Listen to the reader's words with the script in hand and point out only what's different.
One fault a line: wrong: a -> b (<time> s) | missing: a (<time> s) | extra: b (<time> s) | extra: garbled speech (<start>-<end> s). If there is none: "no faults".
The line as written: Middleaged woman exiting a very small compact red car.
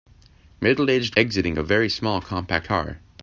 missing: woman (1.1 s)
missing: red (2.7 s)